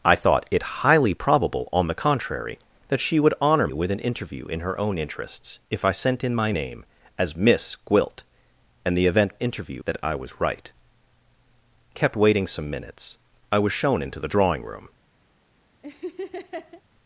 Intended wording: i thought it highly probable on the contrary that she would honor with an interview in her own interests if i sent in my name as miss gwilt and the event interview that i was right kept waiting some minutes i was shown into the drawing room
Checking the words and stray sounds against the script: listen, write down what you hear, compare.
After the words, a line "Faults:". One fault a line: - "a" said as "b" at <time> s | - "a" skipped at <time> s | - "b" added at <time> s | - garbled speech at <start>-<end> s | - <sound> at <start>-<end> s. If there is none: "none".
i thought it highly probable on the contrary that she would honor with an interview in her own interests if i sent in my name as miss gwilt and the event interview that i was right kept waiting some minutes i was shown into the drawing room
Faults:
- laugh at 15.8-16.8 s